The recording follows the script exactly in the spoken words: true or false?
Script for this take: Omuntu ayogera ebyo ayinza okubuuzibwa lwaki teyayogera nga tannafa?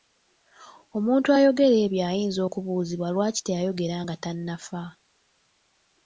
true